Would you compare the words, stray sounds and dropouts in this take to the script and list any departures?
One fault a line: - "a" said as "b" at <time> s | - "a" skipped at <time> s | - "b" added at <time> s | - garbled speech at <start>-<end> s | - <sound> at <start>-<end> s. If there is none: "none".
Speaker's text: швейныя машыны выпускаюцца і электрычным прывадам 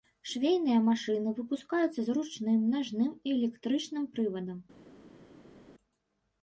- "з ручным нажным" added at 2.0 s